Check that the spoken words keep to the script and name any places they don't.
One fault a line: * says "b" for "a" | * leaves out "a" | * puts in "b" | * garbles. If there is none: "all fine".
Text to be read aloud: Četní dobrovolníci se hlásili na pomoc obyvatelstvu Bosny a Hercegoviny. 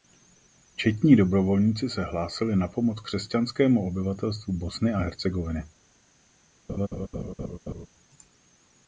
* puts in "křesťanskému"